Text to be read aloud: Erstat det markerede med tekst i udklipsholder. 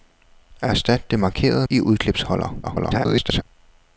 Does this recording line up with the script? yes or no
no